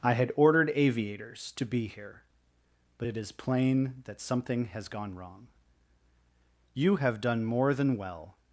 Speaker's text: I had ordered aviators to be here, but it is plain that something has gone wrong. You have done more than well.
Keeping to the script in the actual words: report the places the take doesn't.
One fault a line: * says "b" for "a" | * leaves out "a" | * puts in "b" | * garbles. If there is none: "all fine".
all fine